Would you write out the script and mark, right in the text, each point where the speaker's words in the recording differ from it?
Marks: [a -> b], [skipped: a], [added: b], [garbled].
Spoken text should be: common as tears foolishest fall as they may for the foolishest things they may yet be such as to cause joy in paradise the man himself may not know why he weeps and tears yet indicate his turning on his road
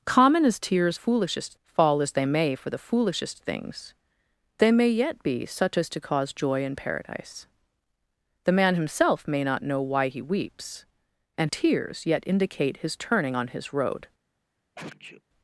common as tears foolishest fall as they may for the foolishest things they may yet be such as to cause joy in paradise the man himself may not know why he weeps and tears yet indicate his turning on his road